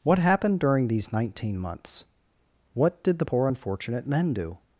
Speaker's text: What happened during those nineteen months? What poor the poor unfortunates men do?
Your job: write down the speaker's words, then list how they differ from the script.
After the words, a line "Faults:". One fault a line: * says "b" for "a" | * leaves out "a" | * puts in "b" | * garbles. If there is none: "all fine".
What happened during these nineteen months? What did the poor unfortunate men do?
Faults:
* says "these" for "those"
* says "did" for "poor"
* says "unfortunate" for "unfortunates"